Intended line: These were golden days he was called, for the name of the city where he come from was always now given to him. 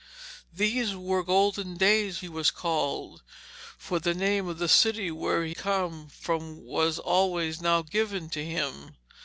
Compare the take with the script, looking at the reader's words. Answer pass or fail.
pass